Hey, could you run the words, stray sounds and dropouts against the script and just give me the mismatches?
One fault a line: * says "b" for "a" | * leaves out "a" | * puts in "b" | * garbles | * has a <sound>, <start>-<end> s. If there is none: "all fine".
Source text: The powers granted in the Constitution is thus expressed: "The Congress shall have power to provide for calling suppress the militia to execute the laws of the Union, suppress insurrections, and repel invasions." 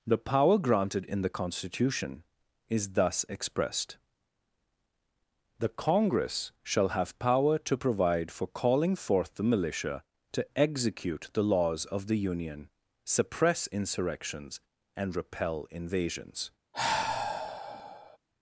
* says "power" for "powers"
* says "forth" for "suppress"
* has a sigh, 16.7-18.2 s